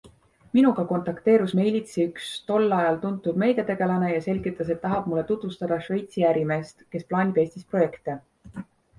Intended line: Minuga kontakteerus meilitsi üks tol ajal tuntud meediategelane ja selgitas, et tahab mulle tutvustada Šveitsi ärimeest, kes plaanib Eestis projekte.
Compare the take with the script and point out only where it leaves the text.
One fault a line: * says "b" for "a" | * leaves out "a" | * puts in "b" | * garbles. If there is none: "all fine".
all fine